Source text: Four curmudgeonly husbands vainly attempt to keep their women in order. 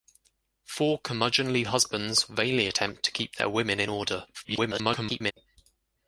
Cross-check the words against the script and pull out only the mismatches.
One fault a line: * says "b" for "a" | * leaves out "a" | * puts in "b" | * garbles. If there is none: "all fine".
* garbles